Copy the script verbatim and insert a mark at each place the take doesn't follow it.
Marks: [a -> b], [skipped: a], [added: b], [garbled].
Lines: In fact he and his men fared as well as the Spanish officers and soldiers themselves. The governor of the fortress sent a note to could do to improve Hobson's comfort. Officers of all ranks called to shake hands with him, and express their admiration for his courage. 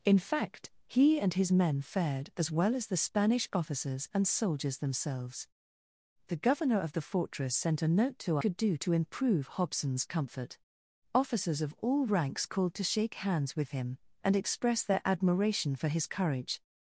In fact he and his men fared as well as the Spanish officers and soldiers themselves. The governor of the fortress sent a note to could do to improve Hobson's comfort. Officers of all ranks called to shake hands with him, and express their admiration for his courage.